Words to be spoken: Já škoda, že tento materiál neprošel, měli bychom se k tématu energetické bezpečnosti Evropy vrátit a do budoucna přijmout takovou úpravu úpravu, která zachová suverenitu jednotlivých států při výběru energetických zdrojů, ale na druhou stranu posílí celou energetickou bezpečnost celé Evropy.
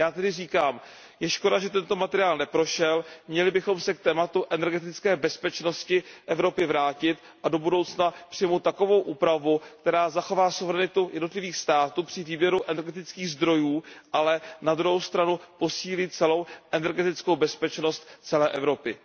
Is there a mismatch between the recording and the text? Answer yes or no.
yes